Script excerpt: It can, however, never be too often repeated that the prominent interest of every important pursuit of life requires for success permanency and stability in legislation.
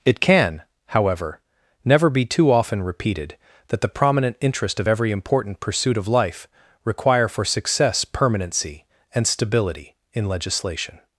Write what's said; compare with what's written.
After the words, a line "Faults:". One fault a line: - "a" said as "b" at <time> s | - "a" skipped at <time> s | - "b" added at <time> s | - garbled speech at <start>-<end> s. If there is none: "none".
It can, however, never be too often repeated that the prominent interest of every important pursuit of life require for success permanency and stability in legislation.
Faults:
- "requires" said as "require" at 6.8 s